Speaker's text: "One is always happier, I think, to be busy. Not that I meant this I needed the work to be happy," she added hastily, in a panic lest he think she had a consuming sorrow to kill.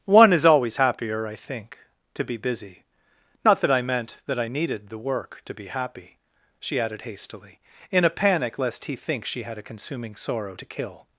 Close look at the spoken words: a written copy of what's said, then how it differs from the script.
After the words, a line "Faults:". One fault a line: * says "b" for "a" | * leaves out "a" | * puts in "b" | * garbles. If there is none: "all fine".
"One is always happier, I think, to be busy. Not that I meant that I needed the work to be happy," she added hastily, in a panic lest he think she had a consuming sorrow to kill.
Faults:
* says "that" for "this"